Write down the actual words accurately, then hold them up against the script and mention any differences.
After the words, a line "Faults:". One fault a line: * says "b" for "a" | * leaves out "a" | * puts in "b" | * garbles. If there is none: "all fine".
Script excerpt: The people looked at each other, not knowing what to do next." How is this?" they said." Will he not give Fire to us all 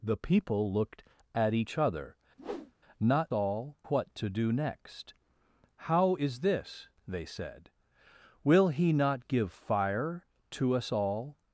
The people looked at each other, not all what to do next." How is this?" they said." Will he not give Fire to us all
Faults:
* says "all" for "knowing"